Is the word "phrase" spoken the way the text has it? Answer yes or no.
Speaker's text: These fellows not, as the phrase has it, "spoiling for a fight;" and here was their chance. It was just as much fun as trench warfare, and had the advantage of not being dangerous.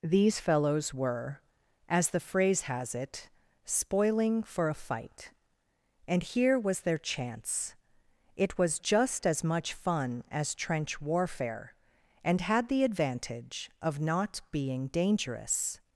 yes